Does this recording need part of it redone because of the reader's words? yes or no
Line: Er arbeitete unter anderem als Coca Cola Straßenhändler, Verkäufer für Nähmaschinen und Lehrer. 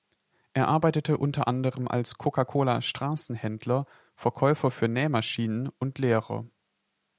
no